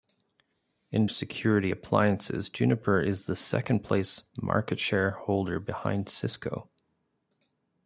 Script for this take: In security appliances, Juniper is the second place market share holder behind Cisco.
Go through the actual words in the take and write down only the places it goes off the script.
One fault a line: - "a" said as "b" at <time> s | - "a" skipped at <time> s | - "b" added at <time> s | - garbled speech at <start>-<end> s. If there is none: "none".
none